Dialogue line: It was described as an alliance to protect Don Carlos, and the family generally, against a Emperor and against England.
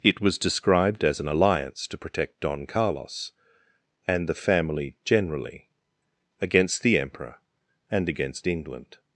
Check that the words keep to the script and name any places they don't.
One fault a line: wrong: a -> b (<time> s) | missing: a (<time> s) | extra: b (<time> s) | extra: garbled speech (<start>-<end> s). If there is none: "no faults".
wrong: a -> the (6.8 s)